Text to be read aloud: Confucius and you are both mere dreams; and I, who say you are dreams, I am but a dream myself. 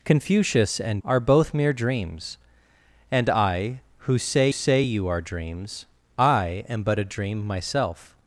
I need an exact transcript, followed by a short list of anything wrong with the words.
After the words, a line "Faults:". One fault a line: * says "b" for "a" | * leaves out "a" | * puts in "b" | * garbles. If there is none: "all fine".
Confucius and are both mere dreams; and I, who say say you are dreams, I am but a dream myself.
Faults:
* leaves out "you"
* puts in "say"